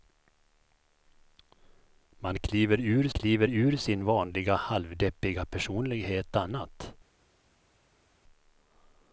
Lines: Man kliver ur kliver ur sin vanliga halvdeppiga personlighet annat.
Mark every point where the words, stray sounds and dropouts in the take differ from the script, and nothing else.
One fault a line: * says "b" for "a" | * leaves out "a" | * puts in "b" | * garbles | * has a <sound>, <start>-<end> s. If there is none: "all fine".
all fine